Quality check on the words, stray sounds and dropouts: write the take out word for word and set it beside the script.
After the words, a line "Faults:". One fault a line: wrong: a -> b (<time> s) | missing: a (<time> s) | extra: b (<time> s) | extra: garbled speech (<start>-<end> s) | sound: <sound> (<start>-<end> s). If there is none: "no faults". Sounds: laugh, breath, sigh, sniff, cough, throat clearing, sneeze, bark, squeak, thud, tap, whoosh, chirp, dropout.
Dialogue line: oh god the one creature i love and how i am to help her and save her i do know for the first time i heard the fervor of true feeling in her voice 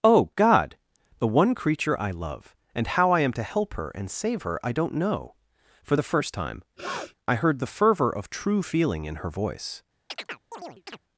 oh god the one creature i love and how i am to help her and save her i don't know for the first time i heard the fervor of true feeling in her voice
Faults:
wrong: do -> don't (4.7 s)
sound: sniff (6.8-7.2 s)
sound: chirp (10.1-11.0 s)